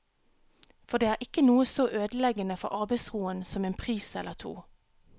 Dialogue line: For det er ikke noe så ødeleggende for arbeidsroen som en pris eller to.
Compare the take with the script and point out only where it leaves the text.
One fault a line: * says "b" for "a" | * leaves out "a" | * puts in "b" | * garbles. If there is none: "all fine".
all fine